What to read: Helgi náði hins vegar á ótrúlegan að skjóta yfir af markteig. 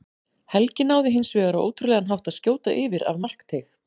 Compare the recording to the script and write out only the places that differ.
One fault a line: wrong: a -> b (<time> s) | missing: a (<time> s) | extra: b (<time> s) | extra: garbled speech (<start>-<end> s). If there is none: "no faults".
extra: hátt (2.1 s)